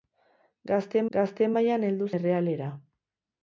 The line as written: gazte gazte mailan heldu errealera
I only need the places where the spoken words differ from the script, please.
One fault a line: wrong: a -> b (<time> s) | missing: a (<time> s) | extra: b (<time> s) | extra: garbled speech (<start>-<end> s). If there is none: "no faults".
no faults